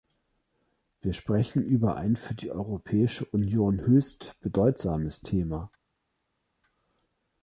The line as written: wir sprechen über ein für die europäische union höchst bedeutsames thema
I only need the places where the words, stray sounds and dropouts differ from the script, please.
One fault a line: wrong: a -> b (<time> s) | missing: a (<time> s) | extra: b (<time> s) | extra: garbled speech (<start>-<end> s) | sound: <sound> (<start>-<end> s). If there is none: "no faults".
no faults